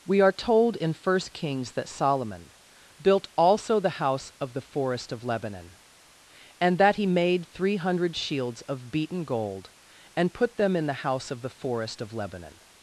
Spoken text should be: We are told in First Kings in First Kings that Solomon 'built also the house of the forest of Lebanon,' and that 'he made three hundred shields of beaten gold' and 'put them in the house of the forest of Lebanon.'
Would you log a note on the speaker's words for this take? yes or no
yes